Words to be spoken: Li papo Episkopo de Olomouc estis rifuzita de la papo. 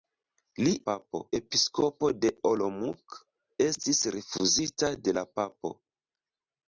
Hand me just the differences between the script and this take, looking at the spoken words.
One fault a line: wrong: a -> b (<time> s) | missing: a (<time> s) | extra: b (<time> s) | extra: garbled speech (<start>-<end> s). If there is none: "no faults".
no faults